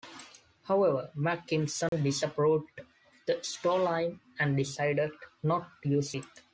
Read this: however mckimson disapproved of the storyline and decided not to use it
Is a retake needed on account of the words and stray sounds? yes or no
yes